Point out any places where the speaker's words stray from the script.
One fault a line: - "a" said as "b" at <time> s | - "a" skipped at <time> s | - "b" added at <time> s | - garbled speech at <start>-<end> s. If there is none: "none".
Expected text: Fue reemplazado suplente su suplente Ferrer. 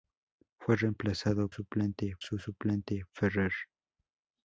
none